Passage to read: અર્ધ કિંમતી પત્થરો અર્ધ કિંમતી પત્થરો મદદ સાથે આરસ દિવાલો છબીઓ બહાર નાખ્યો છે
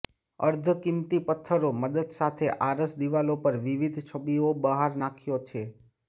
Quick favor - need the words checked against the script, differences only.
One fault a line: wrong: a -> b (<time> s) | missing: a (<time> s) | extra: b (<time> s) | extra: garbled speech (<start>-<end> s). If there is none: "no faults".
missing: અર્ધ કિંમતી પત્થરો (1.7 s)
extra: પર વિવિધ (3.4 s)